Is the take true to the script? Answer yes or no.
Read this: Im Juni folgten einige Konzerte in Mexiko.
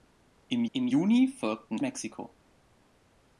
no